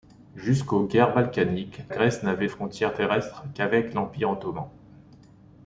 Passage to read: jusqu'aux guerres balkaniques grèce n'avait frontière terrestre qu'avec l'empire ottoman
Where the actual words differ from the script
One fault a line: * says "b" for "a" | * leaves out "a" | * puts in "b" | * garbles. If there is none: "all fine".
all fine